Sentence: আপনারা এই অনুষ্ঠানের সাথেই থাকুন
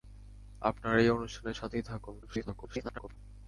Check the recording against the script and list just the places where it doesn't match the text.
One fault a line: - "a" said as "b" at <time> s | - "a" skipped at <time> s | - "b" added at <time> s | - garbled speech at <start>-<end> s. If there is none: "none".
- garbled speech at 2.2-3.2 s